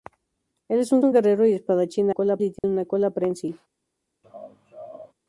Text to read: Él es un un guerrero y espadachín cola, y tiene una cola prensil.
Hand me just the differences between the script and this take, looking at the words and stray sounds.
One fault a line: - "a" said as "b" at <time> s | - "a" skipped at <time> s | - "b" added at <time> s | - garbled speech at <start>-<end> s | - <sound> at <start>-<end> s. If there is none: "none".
- dropout at 2.6-2.6 s
- laugh at 4.2-5.1 s